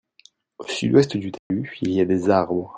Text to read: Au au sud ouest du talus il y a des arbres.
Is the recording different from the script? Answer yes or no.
yes